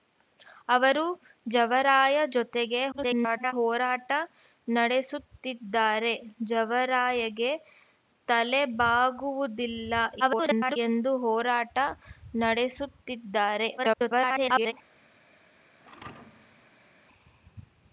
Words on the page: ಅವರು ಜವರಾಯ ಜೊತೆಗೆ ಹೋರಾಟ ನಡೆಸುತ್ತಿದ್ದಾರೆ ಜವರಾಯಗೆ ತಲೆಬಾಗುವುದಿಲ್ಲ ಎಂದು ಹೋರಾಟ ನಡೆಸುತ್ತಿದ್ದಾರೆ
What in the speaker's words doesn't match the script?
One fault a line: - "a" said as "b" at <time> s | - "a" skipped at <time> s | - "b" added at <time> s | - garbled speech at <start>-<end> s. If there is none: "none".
- garbled speech at 2.9-3.5 s
- garbled speech at 10.2-10.8 s
- garbled speech at 13.8-14.7 s